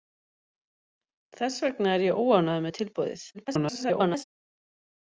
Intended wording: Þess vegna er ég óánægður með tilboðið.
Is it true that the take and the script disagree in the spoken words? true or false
true